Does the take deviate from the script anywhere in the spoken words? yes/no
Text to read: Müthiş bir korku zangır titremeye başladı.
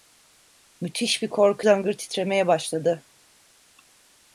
no